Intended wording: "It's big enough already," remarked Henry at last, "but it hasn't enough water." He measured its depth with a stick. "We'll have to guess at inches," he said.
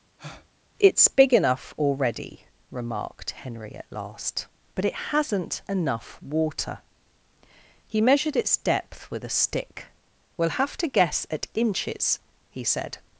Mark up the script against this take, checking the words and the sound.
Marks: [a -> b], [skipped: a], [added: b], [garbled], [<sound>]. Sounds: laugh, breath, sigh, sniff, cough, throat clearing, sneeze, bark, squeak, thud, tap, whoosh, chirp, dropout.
[breath] "It's big enough already," remarked Henry at last, "but it hasn't enough water." He measured its depth with a stick. "We'll have to guess at inches," he said.